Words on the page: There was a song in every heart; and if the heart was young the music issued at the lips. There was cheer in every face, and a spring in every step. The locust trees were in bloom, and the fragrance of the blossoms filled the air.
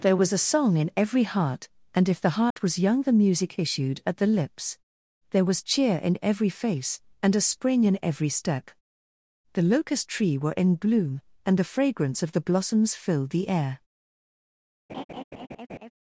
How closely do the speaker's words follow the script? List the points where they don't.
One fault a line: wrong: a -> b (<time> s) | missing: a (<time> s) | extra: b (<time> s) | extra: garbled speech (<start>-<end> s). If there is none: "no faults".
wrong: trees -> tree (10.1 s)